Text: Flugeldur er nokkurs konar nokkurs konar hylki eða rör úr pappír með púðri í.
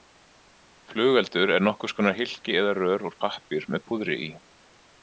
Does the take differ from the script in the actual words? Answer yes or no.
yes